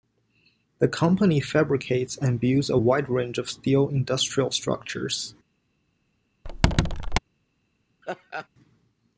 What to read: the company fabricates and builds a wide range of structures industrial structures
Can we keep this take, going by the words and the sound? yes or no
no